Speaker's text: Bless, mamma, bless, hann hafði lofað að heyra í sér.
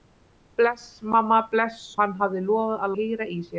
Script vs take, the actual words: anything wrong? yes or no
no